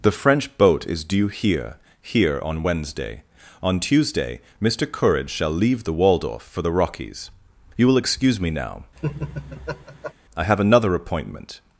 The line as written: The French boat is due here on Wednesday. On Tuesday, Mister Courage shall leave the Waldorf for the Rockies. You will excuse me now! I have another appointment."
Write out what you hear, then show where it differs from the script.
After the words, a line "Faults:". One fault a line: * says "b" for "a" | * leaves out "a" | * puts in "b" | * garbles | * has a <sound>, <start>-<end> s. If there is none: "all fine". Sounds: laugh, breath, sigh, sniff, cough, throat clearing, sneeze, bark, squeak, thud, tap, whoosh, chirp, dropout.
The French boat is due here here on Wednesday. On Tuesday, Mister Courage shall leave the Waldorf for the Rockies. You will excuse me now! I have another appointment."
Faults:
* puts in "here"
* has a laugh, 9.0-10.1 s